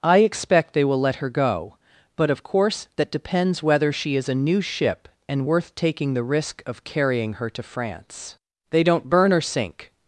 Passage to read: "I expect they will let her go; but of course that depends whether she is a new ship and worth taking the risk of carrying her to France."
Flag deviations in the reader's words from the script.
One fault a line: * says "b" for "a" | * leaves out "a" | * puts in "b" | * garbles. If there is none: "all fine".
* puts in "They don't burn or sink"